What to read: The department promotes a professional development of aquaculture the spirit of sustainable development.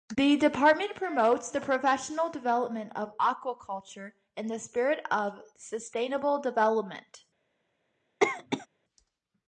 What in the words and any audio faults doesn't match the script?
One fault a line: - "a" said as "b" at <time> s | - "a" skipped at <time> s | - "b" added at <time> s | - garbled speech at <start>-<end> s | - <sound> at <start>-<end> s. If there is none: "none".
- "a" said as "the" at 1.5 s
- "in" added at 4.3 s
- cough at 8.2-8.7 s